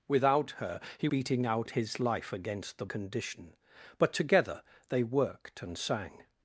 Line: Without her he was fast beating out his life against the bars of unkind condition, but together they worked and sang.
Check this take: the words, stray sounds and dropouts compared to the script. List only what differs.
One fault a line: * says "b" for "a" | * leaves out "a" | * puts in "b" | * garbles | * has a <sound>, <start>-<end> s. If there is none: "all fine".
* leaves out "was fast"
* leaves out "bars of unkind"